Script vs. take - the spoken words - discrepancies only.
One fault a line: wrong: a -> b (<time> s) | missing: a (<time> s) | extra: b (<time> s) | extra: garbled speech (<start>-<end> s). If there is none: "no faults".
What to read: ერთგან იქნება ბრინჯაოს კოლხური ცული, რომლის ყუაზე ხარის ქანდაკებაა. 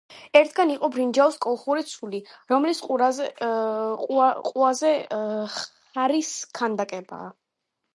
wrong: იქნება -> იყო (0.8 s)